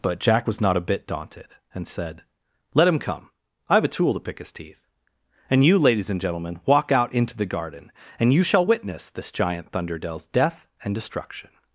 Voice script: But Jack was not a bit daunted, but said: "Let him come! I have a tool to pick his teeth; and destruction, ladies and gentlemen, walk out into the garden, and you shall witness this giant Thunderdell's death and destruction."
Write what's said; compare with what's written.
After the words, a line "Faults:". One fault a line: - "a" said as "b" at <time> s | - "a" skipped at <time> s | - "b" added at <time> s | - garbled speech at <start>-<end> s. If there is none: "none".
But Jack was not a bit daunted, and said: "Let him come! I have a tool to pick his teeth; and you, ladies and gentlemen, walk out into the garden, and you shall witness this giant Thunderdell's death and destruction."
Faults:
- "but" said as "and" at 1.7 s
- "destruction" said as "you" at 5.6 s